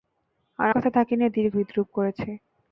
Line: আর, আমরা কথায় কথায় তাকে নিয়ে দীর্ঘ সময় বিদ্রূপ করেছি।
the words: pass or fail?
fail